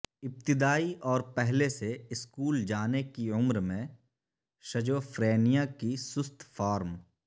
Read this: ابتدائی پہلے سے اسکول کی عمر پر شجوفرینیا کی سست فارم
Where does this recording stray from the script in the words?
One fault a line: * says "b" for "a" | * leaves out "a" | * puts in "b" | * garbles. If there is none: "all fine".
* puts in "اور"
* puts in "جانے"
* says "میں" for "پر"